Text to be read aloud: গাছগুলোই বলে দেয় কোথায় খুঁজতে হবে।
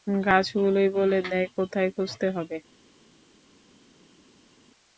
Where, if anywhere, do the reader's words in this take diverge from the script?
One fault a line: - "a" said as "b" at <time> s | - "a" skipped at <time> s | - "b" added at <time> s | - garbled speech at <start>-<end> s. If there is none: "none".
none